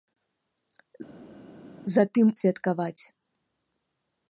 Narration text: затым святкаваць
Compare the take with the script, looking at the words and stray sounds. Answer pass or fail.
pass